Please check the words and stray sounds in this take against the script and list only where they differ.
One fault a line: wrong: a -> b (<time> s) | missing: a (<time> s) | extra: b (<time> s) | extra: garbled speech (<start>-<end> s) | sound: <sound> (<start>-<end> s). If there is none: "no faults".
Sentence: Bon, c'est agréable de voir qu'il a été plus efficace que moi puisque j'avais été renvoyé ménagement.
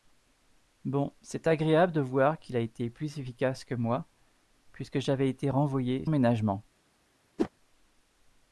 sound: whoosh (7.4-7.5 s)